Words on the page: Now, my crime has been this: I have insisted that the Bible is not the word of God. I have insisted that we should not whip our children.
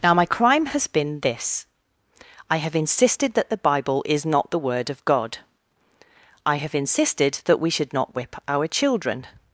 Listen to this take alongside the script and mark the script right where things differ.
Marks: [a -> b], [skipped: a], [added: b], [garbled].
Now, my crime has been this: I have insisted that the Bible is not the word of God. I have insisted that we should not whip our children.